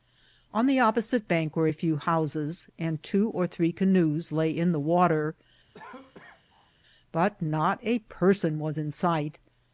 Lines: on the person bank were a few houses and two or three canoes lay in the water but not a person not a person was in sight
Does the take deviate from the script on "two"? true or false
false